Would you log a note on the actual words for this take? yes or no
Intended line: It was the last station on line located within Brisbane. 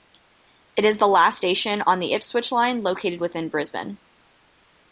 yes